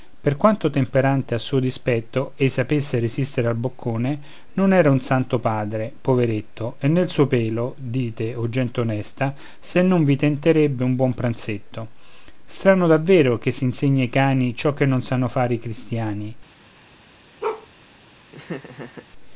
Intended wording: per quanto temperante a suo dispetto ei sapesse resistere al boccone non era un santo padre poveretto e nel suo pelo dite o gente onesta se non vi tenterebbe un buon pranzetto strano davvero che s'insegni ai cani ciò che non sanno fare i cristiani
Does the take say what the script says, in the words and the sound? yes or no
no